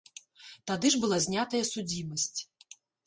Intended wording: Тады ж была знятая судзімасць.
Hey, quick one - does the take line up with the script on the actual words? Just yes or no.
yes